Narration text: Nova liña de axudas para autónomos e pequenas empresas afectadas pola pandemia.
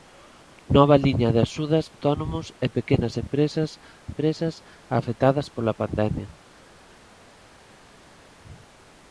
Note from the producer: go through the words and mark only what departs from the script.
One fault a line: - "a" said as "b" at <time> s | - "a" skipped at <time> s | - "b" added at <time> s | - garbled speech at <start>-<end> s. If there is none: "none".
- "para" skipped at 1.9 s
- "empresas" added at 4.1 s